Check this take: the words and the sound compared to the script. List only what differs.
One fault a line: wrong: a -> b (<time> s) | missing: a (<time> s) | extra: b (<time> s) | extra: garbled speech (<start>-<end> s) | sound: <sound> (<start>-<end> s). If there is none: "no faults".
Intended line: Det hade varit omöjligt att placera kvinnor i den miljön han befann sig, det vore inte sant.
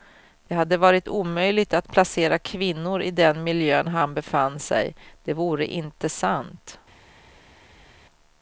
no faults